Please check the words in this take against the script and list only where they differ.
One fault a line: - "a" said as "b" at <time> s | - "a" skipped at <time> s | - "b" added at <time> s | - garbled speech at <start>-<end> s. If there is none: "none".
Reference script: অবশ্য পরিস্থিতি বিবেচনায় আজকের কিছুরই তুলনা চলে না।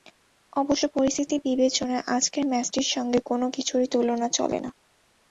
- "ম্যাচটির সঙ্গে কোনো" added at 2.5 s